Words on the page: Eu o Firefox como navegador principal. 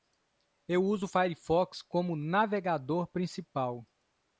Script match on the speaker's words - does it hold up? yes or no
no